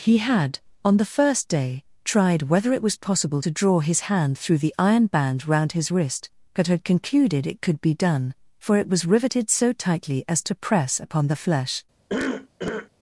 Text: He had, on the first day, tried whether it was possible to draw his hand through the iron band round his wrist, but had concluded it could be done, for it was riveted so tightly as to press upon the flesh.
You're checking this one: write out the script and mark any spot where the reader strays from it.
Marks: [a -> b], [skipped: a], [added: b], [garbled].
He had, on the first day, tried whether it was possible to draw his hand through the iron band round his wrist, but had concluded it could be done, for it was riveted so tightly as to press upon the flesh.